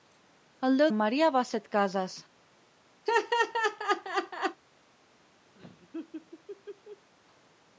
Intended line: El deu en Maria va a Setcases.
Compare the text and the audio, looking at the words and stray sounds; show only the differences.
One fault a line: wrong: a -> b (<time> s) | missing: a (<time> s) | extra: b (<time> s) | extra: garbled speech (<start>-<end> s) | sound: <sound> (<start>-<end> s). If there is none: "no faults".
sound: laugh (3.1-4.6 s)
sound: laugh (5.5-7.1 s)